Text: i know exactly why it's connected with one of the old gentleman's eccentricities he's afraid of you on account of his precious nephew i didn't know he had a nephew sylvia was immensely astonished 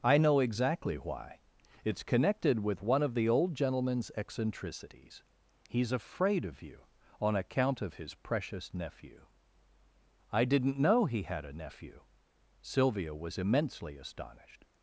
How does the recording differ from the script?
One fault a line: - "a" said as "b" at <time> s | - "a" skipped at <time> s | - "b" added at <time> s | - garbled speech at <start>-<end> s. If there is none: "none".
none